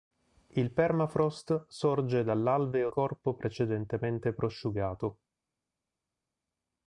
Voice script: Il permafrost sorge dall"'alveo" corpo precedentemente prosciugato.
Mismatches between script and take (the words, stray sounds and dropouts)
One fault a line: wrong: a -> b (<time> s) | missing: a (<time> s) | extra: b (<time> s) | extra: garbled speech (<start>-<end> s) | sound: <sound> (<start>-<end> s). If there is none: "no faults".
no faults